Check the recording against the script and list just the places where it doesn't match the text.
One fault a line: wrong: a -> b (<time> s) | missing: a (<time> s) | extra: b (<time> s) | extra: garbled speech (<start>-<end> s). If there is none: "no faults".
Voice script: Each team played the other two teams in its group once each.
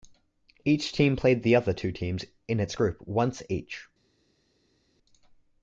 no faults